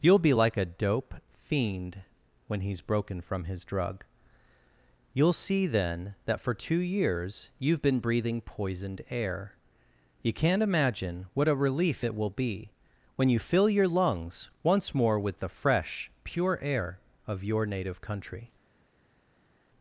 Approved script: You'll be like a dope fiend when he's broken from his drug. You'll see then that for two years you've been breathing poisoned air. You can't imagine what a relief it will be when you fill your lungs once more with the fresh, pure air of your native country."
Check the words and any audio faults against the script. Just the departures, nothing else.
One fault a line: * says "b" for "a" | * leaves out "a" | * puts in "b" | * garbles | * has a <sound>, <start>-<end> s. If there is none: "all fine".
all fine